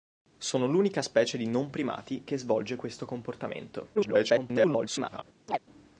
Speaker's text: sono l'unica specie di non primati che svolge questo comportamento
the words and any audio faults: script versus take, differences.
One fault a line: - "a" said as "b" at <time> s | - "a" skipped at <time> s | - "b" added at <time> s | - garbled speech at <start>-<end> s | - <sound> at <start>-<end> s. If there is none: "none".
- garbled speech at 3.9-5.2 s
- chirp at 5.5-5.6 s